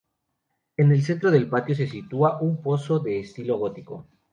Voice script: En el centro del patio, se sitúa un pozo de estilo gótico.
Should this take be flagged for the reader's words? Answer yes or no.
no